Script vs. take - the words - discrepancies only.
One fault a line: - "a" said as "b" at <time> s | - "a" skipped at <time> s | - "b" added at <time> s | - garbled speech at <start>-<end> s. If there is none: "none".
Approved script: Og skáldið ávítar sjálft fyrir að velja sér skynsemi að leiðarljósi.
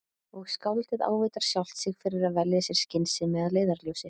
- "sig" added at 1.8 s